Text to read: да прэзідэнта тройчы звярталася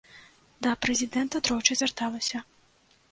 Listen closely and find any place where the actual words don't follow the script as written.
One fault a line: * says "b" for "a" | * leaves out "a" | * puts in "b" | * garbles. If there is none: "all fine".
all fine